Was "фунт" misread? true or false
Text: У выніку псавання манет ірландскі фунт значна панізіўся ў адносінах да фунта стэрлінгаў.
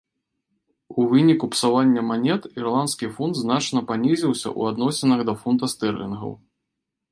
false